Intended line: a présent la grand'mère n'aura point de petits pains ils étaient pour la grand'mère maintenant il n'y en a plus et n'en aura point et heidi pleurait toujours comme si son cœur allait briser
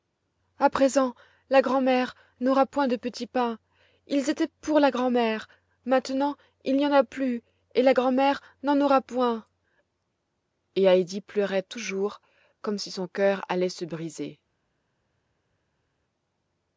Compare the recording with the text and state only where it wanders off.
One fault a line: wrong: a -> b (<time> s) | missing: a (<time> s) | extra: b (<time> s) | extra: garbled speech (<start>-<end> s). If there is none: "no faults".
extra: la grand'mère (7.8 s)
extra: se (13.7 s)